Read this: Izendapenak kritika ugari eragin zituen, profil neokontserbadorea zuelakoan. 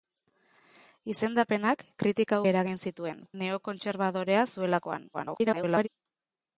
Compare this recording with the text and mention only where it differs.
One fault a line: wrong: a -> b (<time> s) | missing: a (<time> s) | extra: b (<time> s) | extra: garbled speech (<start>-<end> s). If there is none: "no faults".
missing: ugari (2.4 s)
missing: profil (3.2 s)
extra: garbled speech (5.1-5.9 s)